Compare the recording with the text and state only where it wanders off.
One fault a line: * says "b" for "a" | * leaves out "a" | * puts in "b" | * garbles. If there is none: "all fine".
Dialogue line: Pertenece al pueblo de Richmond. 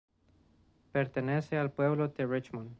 all fine